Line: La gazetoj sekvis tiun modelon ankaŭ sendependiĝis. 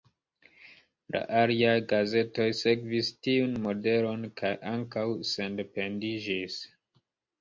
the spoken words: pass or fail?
fail